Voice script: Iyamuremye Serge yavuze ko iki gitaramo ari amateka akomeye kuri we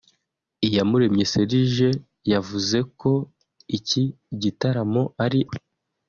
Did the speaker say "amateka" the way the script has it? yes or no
no